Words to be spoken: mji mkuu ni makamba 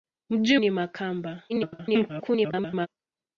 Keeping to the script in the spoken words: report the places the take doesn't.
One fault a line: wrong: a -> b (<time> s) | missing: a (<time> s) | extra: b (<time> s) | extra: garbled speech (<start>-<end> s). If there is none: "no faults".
missing: mkuu (0.6 s)
extra: garbled speech (1.5-2.9 s)